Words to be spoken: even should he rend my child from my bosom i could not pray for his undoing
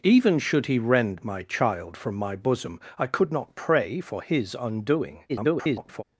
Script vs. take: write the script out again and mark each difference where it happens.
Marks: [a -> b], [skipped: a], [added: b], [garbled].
even should he rend my child from my bosom i could not pray for his undoing [garbled]